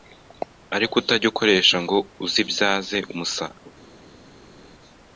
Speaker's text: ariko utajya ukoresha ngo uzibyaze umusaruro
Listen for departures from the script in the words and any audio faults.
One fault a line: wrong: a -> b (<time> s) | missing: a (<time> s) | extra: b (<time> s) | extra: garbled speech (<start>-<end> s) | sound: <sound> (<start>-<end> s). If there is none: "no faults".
no faults